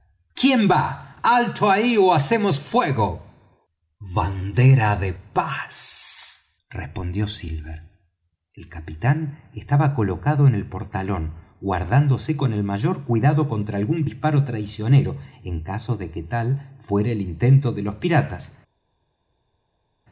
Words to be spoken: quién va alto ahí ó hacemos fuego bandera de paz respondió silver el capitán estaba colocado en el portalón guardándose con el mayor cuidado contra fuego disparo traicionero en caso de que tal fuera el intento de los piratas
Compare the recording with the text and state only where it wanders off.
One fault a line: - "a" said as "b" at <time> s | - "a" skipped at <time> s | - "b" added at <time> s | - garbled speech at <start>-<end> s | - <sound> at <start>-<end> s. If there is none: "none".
- "fuego" said as "algún" at 13.8 s